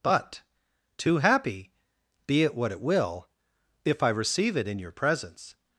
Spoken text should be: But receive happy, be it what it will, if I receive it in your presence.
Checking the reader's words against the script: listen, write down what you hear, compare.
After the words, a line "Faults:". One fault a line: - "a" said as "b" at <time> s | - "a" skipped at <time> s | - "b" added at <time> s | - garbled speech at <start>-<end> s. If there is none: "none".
But too happy, be it what it will, if I receive it in your presence.
Faults:
- "receive" said as "too" at 1.0 s